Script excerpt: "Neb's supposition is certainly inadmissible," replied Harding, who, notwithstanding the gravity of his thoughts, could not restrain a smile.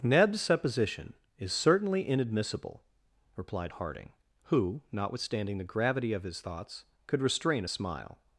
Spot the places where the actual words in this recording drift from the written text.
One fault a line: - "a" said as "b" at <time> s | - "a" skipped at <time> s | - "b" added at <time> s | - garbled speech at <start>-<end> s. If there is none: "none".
- "not" skipped at 7.2 s